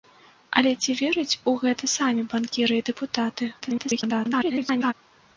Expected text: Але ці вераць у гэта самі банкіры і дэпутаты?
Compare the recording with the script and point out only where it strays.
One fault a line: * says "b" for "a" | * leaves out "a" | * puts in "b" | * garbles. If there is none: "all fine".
* garbles